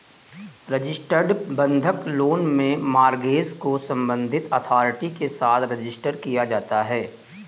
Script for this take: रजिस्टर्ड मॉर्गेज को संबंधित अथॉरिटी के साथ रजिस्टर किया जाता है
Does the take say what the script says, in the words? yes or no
no